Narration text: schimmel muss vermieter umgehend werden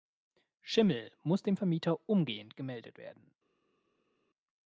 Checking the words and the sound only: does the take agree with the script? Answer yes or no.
no